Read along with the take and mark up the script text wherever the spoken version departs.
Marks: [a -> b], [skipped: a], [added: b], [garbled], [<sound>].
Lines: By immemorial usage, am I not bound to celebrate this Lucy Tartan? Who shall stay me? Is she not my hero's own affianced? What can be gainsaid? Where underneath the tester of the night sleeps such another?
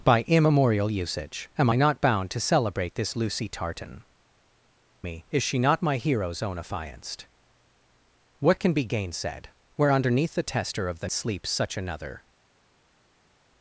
By immemorial usage, am I not bound to celebrate this Lucy Tartan? [skipped: Who shall stay] me? Is she not my hero's own affianced? What can be gainsaid? Where underneath the tester of the [skipped: night] sleeps such another?